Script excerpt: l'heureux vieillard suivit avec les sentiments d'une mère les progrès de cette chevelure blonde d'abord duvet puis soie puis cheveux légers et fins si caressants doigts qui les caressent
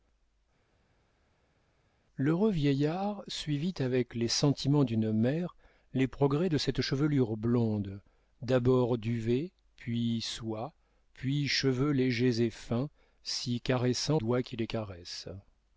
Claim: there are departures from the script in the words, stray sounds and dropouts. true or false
false